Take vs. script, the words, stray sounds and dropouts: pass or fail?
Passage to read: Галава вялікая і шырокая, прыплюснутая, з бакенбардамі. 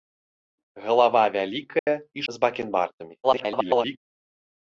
fail